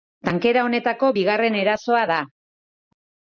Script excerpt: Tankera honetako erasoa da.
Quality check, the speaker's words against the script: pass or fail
fail